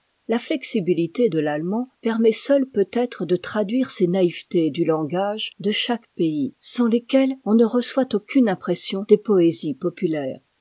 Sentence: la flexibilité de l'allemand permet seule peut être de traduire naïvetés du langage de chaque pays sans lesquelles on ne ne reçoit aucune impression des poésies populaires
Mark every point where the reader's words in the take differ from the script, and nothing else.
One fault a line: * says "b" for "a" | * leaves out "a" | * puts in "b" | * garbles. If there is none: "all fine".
* puts in "ces"
* leaves out "ne"